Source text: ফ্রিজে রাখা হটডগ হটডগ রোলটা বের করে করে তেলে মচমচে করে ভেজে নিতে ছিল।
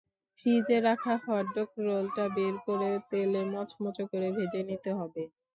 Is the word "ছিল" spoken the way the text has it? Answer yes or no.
no